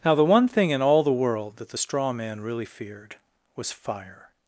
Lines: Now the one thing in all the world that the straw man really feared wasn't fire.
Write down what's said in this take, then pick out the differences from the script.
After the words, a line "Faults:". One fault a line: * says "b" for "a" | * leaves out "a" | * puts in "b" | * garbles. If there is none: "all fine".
Now the one thing in all the world that the straw man really feared was fire.
Faults:
* says "was" for "wasn't"